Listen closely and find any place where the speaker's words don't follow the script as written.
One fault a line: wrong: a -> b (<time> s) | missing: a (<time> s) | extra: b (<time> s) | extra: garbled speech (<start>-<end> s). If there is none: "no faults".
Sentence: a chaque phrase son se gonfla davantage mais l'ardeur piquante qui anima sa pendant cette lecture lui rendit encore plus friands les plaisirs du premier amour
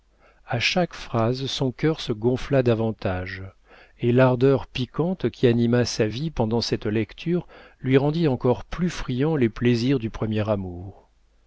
extra: cœur (1.7 s)
wrong: mais -> et (4.0 s)
extra: vie (6.1 s)